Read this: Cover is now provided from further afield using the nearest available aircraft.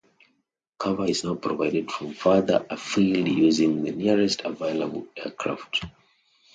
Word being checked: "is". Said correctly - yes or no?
yes